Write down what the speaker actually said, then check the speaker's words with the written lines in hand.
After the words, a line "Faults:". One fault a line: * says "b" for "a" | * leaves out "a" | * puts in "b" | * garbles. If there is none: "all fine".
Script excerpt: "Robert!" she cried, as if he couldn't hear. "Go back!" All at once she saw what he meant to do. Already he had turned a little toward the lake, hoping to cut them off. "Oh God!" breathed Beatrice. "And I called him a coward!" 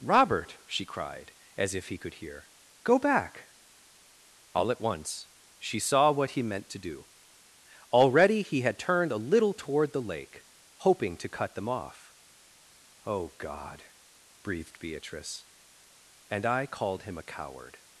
"Robert!" she cried, as if he could hear. "Go back!" All at once she saw what he meant to do. Already he had turned a little toward the lake, hoping to cut them off. "Oh God!" breathed Beatrice. "And I called him a coward!"
Faults:
* says "could" for "couldn't"